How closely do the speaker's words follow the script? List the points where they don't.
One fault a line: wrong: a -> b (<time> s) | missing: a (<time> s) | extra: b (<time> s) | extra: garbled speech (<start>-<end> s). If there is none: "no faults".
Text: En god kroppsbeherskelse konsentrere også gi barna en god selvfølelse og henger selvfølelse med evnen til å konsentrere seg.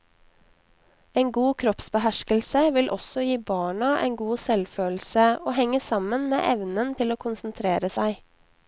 wrong: konsentrere -> vil (2.8 s)
wrong: selvfølelse -> sammen (5.8 s)